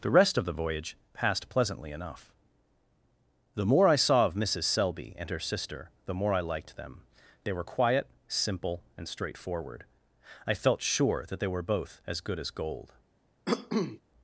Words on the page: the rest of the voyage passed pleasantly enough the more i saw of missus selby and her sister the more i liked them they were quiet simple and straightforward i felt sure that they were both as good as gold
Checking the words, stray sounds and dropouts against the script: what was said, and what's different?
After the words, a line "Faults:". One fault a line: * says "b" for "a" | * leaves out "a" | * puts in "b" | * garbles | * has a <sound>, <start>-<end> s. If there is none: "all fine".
the rest of the voyage passed pleasantly enough the more i saw of missus selby and her sister the more i liked them they were quiet simple and straightforward i felt sure that they were both as good as gold
Faults:
* has a cough, 13.5-14.0 s